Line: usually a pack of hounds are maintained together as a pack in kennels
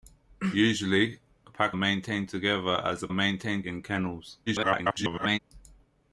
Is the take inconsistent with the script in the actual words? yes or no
yes